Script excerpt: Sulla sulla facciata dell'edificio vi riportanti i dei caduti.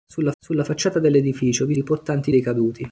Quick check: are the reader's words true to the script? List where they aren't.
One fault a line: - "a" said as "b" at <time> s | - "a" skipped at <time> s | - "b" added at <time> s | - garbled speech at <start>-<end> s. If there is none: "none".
none